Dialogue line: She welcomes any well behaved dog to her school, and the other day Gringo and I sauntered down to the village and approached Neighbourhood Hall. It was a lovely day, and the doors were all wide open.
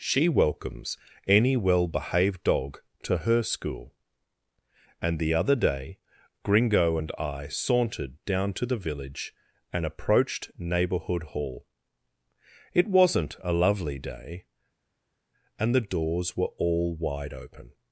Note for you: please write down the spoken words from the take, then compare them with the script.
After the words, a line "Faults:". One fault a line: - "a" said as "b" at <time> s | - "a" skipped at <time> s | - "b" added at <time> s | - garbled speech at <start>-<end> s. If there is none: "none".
She welcomes any well behaved dog to her school, and the other day Gringo and I sauntered down to the village and approached Neighbourhood Hall. It wasn't a lovely day, and the doors were all wide open.
Faults:
- "was" said as "wasn't" at 12.9 s